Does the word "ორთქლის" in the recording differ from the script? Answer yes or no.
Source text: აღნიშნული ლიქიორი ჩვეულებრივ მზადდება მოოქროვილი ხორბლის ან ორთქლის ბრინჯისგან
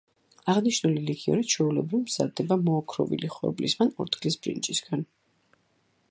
no